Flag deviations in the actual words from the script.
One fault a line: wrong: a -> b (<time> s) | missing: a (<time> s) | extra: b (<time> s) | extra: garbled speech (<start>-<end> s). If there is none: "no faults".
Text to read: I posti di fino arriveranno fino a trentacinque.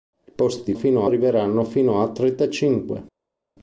no faults